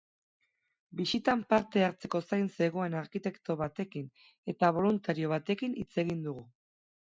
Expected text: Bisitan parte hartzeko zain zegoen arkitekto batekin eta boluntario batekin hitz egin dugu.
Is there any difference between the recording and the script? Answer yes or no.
no